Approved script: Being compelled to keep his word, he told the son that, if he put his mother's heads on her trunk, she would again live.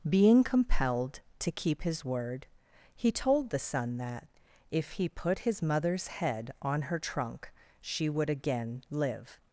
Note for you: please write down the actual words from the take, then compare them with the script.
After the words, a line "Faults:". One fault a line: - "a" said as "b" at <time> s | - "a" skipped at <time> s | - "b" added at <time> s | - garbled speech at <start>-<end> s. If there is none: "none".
Being compelled to keep his word, he told the son that, if he put his mother's head on her trunk, she would again live.
Faults:
- "heads" said as "head" at 6.1 s